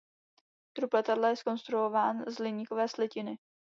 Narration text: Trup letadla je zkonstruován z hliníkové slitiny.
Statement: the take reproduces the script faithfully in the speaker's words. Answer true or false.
true